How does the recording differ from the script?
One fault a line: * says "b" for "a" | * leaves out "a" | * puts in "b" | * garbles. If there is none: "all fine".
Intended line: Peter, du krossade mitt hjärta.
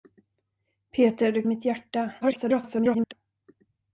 * leaves out "krossade"
* garbles